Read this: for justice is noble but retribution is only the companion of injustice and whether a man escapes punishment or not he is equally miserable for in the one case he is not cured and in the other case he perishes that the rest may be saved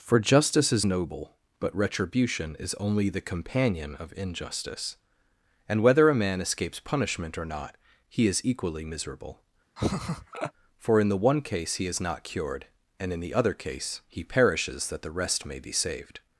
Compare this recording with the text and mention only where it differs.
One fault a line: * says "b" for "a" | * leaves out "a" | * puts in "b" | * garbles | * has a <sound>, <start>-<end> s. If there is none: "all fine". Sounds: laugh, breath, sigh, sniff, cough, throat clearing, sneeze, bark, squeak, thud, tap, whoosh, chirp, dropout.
* has a laugh, 9.8-10.5 s